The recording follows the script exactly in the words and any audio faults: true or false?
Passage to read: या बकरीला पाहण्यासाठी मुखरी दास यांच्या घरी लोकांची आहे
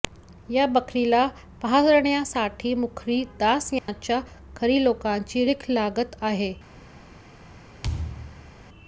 false